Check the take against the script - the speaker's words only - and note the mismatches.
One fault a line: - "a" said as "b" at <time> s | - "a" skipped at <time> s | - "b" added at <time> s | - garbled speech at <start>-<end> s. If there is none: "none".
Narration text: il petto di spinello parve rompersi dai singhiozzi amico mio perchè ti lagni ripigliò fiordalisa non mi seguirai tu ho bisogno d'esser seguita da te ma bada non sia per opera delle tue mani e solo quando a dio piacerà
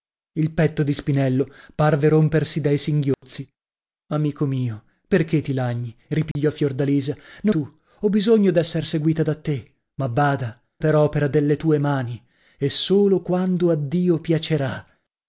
- "mi seguirai" skipped at 7.5 s
- "non sia" skipped at 10.6 s